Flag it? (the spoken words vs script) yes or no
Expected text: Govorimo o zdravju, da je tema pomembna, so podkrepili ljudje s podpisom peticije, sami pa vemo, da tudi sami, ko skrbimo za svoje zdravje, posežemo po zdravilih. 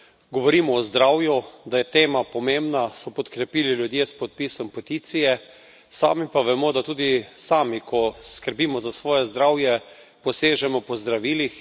no